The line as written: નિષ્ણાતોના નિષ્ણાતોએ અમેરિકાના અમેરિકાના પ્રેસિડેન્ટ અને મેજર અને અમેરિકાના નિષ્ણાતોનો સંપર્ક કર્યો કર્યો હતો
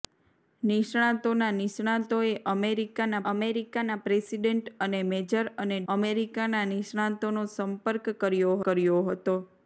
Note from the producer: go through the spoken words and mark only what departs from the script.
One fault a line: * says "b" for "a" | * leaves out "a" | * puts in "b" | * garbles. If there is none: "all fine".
all fine